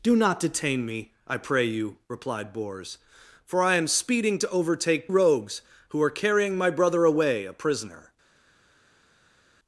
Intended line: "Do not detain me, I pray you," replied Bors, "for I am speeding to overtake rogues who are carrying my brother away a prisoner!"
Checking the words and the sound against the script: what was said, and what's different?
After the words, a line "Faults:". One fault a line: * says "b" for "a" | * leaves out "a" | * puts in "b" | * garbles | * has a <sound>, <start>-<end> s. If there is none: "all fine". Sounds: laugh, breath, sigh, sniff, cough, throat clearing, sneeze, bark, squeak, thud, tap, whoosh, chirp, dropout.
"Do not detain me, I pray you," replied Bors, "for I am speeding to overtake rogues who are carrying my brother away a prisoner!"
Faults:
all fine